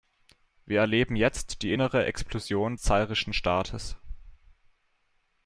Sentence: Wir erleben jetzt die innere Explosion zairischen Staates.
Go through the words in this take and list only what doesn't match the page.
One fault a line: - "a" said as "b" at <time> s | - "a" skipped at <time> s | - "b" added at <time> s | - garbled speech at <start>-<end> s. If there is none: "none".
none